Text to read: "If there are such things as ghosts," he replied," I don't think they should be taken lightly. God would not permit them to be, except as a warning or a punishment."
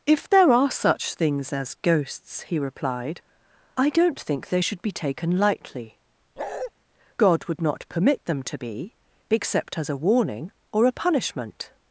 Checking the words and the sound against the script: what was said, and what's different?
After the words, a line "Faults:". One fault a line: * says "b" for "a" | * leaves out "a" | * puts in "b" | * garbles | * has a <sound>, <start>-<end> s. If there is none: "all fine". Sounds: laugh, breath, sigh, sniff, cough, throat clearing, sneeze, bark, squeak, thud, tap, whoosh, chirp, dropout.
"If there are such things as ghosts," he replied," I don't think they should be taken lightly. God would not permit them to be, except as a warning or a punishment."
Faults:
* has a bark, 6.4-6.7 s